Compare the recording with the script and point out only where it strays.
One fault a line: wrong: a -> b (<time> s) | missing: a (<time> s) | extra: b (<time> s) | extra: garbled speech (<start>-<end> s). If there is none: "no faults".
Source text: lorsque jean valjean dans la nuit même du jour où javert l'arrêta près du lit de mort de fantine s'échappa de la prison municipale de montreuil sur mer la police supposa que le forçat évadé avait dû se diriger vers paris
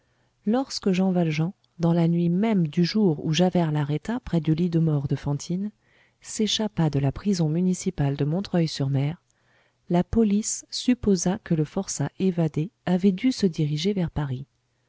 no faults